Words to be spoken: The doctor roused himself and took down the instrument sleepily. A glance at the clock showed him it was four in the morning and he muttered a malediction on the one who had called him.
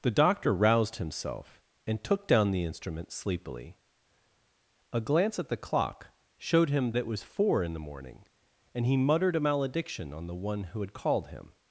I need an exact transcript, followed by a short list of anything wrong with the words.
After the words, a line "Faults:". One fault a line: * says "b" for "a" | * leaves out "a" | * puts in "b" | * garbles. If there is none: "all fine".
The doctor roused himself and took down the instrument sleepily. A glance at the clock showed him it was four in the morning and he muttered a malediction on the one who had called him.
Faults:
all fine